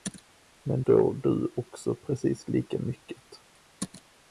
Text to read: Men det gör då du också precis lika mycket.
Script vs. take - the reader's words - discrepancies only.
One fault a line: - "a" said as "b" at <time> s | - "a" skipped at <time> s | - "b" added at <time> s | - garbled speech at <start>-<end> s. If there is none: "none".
- "det gör" skipped at 0.8 s